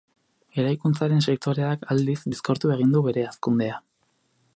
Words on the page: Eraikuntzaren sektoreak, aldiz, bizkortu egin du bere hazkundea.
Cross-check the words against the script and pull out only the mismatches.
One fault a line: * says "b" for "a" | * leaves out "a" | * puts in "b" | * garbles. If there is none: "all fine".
all fine